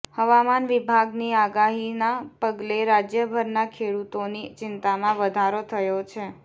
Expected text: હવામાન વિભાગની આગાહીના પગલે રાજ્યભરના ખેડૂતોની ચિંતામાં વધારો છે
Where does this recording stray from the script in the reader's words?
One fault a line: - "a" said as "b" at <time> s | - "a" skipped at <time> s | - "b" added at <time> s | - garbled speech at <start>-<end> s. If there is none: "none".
- "થયો" added at 5.7 s